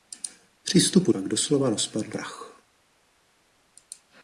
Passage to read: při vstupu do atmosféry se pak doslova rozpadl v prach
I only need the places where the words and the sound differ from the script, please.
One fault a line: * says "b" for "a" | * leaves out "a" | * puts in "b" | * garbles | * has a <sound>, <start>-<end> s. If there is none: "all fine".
* leaves out "do atmosféry se"
* leaves out "v"